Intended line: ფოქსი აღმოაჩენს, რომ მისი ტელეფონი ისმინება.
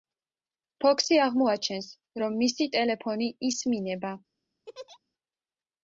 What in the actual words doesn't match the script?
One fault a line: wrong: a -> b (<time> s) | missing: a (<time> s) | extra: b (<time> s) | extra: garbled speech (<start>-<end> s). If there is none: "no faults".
no faults